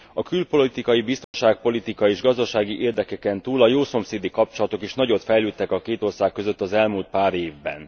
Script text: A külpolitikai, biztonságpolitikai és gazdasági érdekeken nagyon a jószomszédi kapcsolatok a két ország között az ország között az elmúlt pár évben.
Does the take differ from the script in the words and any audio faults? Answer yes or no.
yes